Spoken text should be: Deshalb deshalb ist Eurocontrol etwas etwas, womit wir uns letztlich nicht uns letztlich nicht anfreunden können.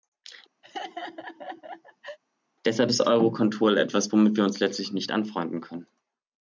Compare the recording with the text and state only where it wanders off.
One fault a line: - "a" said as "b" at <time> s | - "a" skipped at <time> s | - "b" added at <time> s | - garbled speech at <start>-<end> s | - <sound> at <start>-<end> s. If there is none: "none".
- laugh at 0.6-2.2 s
- "deshalb" skipped at 2.9 s
- "etwas" skipped at 4.1 s
- "uns letztlich nicht" skipped at 5.1 s